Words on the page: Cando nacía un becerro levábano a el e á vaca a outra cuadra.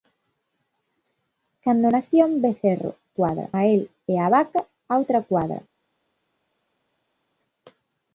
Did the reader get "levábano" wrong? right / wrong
wrong